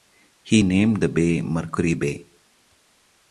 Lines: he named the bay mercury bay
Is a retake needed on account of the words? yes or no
no